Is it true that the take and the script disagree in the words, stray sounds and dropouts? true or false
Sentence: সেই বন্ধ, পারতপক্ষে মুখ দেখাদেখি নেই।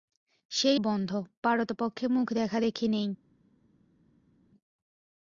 false